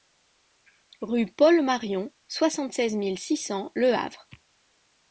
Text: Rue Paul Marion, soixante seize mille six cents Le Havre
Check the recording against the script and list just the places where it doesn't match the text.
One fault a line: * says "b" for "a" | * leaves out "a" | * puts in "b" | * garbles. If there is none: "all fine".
all fine